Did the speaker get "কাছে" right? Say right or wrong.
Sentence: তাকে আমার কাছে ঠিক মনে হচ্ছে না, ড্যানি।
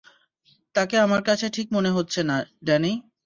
right